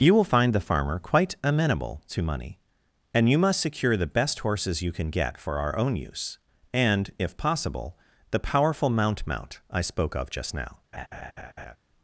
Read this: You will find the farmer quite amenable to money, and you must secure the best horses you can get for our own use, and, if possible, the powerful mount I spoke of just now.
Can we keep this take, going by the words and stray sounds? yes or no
no